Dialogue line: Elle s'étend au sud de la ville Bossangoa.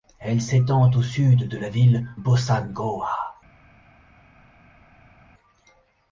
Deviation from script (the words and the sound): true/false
false